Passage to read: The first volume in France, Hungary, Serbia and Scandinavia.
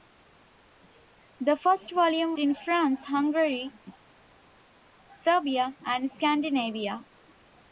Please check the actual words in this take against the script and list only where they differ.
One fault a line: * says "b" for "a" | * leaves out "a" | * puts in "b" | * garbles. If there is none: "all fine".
all fine